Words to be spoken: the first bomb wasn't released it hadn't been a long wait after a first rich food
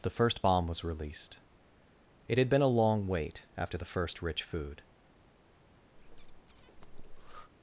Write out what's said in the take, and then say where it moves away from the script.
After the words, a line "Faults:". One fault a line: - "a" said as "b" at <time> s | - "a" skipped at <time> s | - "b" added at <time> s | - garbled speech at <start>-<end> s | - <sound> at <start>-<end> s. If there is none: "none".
the first bomb was released it had been a long wait after the first rich food
Faults:
- "wasn't" said as "was" at 0.7 s
- "hadn't" said as "had" at 2.4 s
- "a" said as "the" at 3.8 s
- breath at 5.9-7.5 s